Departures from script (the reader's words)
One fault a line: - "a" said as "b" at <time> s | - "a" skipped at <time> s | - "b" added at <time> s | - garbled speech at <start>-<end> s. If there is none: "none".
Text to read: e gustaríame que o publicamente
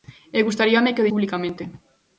none